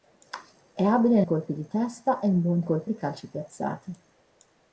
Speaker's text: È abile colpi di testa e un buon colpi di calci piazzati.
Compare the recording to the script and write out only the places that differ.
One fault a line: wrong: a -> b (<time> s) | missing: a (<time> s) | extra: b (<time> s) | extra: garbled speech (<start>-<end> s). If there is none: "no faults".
no faults